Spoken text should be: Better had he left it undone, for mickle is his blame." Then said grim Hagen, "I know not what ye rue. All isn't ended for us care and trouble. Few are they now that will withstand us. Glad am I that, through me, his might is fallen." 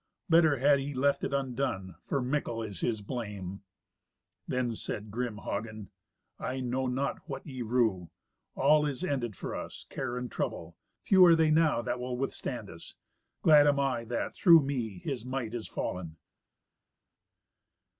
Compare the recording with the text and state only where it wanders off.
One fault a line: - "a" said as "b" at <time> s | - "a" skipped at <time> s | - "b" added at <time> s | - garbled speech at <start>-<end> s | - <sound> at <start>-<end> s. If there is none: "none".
- "isn't" said as "is" at 8.9 s